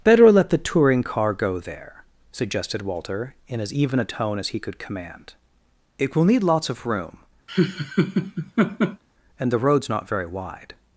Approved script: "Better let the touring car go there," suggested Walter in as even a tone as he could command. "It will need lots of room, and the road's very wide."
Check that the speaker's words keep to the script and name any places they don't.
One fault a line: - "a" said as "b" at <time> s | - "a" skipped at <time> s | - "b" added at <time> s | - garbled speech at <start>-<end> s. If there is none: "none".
- "not" added at 9.9 s